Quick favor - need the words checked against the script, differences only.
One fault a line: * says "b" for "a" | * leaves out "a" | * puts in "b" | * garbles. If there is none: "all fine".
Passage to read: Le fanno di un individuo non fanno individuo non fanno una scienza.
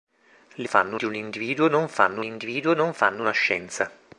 all fine